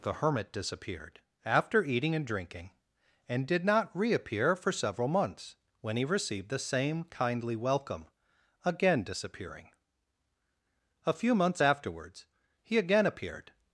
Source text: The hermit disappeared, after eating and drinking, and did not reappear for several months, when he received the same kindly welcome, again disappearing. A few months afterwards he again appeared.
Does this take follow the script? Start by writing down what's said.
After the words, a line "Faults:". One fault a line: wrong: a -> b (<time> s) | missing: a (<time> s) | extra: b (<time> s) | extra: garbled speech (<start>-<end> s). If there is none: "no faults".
The hermit disappeared, after eating and drinking, and did not reappear for several months, when he received the same kindly welcome, again disappearing. A few months afterwards he again appeared.
Faults:
no faults